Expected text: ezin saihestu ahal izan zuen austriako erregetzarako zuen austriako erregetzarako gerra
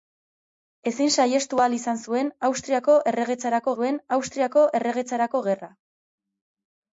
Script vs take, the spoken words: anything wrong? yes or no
no